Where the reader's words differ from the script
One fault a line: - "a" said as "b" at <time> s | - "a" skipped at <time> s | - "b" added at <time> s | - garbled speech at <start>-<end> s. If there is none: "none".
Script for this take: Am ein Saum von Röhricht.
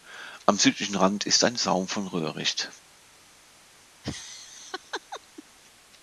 - "südlichen Rand ist" added at 0.6 s